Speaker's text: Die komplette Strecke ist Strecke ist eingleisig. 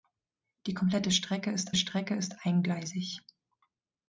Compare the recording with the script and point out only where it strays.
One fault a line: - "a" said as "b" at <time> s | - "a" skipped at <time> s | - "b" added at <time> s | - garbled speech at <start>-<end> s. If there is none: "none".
none